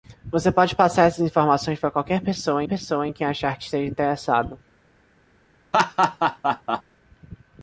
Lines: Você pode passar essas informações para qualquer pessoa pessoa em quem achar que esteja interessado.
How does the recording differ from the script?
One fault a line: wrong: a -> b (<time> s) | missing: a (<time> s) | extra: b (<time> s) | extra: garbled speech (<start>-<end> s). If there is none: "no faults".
no faults